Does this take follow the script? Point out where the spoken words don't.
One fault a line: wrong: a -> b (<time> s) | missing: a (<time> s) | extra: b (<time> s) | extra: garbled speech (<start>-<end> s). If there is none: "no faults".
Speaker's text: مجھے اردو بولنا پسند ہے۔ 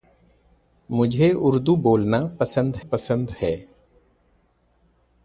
extra: پسند (2.9 s)